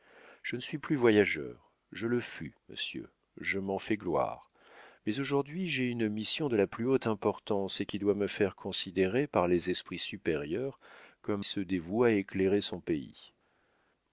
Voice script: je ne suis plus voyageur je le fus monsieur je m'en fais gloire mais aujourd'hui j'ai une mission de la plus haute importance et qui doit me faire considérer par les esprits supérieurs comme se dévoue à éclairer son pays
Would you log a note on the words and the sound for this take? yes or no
no